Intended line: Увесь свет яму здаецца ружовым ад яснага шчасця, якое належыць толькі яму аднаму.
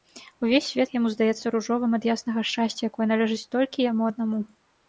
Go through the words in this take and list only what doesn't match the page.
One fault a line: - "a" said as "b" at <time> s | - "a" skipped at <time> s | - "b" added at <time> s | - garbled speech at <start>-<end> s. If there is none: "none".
none